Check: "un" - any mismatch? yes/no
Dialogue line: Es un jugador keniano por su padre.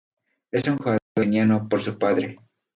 no